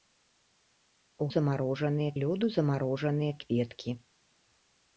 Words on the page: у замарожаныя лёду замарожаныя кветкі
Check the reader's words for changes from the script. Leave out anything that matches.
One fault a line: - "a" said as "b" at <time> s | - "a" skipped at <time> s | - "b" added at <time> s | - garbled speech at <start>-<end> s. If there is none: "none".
none